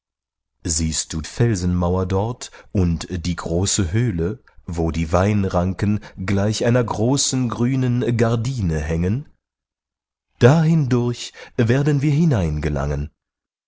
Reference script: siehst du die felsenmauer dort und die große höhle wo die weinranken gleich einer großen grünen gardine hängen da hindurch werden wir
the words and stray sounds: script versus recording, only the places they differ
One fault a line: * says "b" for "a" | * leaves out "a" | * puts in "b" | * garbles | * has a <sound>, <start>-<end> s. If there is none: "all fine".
* leaves out "die"